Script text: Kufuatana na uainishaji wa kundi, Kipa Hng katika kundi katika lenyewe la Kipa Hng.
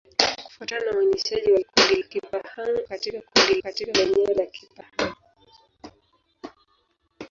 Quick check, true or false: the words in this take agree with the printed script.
true